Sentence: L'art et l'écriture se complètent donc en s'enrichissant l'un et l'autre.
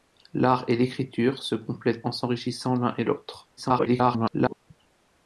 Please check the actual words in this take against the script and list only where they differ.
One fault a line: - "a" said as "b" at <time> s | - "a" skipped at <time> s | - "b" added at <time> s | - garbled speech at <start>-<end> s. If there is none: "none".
- "donc" skipped at 2.1 s
- garbled speech at 3.6-4.5 s